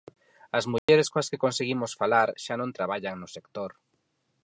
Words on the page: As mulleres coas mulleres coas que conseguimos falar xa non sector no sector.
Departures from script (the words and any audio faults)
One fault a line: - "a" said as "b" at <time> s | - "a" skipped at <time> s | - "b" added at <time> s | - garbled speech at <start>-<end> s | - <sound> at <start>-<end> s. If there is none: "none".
- dropout at 0.8-0.9 s
- "mulleres coas" skipped at 1.3 s
- "sector" said as "traballan" at 2.8 s